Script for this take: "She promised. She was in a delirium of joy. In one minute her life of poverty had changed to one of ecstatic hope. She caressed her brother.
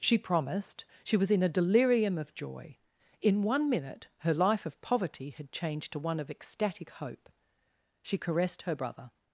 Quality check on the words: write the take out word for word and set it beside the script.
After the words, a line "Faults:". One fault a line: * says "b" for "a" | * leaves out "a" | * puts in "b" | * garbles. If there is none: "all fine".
"She promised. She was in a delirium of joy. In one minute her life of poverty had changed to one of ecstatic hope. She caressed her brother.
Faults:
all fine